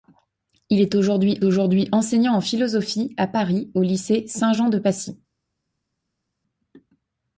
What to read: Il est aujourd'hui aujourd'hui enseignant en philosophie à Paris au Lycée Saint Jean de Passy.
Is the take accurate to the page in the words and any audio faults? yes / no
yes